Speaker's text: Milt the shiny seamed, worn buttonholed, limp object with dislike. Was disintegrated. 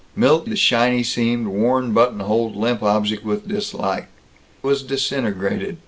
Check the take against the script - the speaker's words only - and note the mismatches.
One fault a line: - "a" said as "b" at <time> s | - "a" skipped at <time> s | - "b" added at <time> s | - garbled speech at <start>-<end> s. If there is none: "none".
none